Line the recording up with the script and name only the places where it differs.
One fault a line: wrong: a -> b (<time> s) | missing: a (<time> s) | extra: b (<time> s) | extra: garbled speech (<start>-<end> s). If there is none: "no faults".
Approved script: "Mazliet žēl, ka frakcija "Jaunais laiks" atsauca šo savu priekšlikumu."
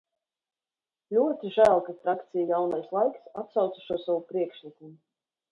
wrong: Mazliet -> Ļoti (1.1 s)